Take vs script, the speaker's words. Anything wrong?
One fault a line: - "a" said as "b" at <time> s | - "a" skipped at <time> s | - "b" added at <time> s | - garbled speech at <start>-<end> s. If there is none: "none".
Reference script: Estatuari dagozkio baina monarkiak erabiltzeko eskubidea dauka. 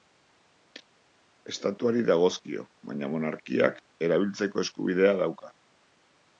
none